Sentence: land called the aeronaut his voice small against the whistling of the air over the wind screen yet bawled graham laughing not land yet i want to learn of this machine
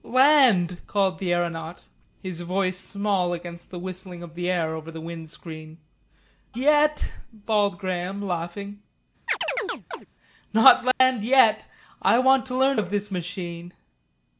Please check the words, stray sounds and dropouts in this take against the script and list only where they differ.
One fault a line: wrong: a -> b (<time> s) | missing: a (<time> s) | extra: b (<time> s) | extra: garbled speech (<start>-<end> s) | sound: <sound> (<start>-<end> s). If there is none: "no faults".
sound: chirp (9.3-10.1 s)
sound: dropout (10.9-11.0 s)